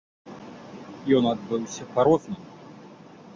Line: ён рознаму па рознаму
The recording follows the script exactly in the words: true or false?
false